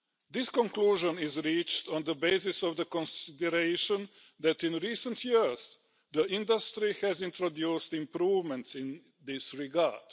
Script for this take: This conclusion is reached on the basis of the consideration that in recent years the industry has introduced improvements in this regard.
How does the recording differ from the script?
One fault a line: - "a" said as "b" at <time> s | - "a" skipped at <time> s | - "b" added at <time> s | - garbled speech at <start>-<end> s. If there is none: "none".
none